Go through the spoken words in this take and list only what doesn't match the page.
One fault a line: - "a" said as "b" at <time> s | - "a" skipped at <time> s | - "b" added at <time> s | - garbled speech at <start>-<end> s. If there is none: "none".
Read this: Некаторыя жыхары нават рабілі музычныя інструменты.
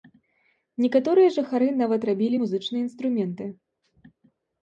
none